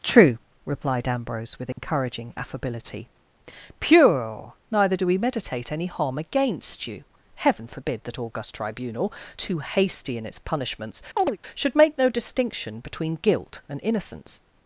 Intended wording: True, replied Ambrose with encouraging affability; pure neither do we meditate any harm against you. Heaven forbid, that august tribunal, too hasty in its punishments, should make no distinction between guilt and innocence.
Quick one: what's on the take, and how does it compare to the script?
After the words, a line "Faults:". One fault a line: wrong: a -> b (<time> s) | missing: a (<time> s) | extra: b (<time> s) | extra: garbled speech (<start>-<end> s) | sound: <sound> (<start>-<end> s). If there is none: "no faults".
True, replied Ambrose with encouraging affability; pure neither do we meditate any harm against you. Heaven forbid, that august tribunal, too hasty in its punishments, should make no distinction between guilt and innocence.
Faults:
sound: dropout (1.7-1.8 s)
sound: chirp (11.2-11.4 s)